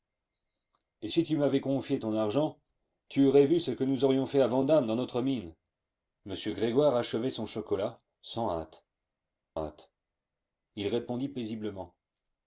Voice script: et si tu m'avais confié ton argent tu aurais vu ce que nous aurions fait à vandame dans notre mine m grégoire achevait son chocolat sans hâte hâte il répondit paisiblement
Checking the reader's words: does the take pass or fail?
pass